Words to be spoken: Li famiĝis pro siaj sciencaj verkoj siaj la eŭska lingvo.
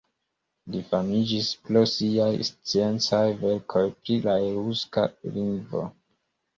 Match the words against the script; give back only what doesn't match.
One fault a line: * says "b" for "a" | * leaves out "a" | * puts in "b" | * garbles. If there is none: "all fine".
* says "pri" for "siaj"